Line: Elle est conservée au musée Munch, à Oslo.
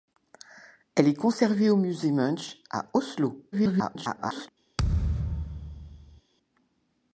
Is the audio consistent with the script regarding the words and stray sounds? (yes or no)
no